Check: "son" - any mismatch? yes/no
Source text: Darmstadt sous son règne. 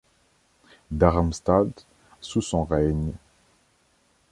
no